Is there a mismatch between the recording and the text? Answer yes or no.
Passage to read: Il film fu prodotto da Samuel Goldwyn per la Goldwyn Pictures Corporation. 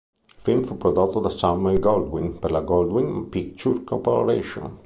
no